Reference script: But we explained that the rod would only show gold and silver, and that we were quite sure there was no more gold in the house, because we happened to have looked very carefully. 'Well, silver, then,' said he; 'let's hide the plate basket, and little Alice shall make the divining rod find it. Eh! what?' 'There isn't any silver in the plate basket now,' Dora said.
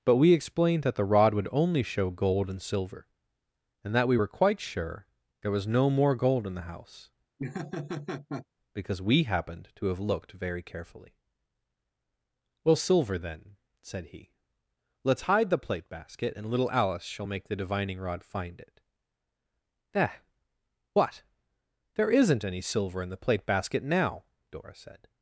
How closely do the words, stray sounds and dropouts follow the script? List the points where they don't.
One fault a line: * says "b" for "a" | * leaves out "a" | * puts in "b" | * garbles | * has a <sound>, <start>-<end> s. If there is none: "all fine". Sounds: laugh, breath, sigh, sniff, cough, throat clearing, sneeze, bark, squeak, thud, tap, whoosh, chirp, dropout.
* has a laugh, 7.4-8.5 s